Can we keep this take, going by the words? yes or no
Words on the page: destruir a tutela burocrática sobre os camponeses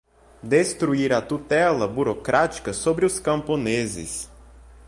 yes